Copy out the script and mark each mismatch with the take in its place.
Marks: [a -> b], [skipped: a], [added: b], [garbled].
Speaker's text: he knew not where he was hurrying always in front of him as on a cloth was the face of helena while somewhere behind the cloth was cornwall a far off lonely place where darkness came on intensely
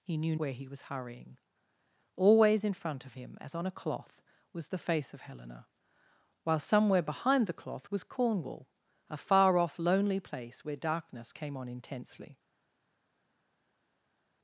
he knew [skipped: not] where he was hurrying always in front of him as on a cloth was the face of helena while somewhere behind the cloth was cornwall a far off lonely place where darkness came on intensely